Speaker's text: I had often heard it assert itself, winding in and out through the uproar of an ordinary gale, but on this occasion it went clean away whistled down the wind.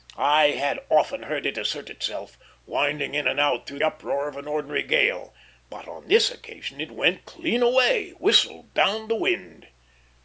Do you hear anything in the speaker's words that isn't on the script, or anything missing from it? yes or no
yes